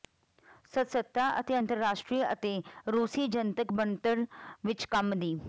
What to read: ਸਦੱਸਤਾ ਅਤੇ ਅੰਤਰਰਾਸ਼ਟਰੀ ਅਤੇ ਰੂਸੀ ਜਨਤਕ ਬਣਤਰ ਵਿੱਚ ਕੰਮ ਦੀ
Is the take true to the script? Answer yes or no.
yes